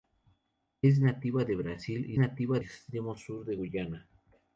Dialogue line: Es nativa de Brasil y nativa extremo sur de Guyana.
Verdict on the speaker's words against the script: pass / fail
pass